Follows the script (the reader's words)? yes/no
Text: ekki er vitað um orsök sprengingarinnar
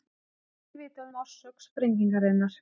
yes